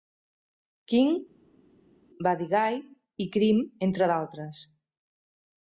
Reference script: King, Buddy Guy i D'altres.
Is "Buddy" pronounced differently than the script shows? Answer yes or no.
no